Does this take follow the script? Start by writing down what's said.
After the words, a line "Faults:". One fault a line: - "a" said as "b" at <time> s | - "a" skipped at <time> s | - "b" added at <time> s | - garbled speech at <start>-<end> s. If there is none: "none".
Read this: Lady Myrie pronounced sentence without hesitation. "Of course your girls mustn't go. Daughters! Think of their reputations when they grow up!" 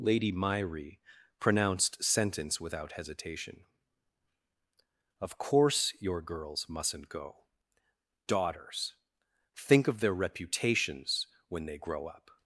Lady Myrie pronounced sentence without hesitation. "Of course your girls mustn't go. Daughters! Think of their reputations when they grow up!"
Faults:
none